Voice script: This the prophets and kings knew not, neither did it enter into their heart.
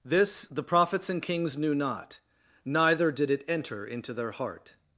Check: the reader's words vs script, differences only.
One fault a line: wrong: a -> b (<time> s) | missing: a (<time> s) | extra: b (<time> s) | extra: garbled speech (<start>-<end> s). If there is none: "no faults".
no faults